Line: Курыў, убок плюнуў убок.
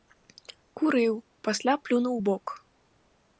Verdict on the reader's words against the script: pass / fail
fail